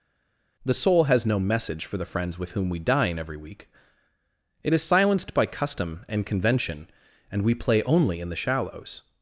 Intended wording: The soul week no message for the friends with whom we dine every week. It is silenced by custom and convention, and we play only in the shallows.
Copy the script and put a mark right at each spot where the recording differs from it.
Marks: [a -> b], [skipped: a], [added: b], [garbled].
The soul [week -> has] no message for the friends with whom we dine every week. It is silenced by custom and convention, and we play only in the shallows.